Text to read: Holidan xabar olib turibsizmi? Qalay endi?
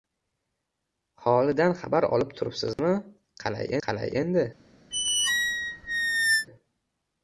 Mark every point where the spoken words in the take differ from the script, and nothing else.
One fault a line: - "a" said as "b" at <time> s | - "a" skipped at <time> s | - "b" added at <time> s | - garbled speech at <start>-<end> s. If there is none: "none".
- "qalay" added at 3.9 s